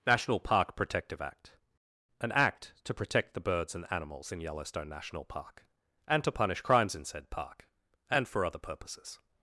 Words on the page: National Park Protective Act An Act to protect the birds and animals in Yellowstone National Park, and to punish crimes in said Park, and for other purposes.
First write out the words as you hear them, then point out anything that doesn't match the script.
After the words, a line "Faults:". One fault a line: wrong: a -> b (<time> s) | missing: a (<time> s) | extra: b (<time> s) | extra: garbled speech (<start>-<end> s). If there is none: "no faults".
National Park Protective Act An Act to protect the birds and animals in Yellowstone National Park, and to punish crimes in said Park, and for other purposes.
Faults:
no faults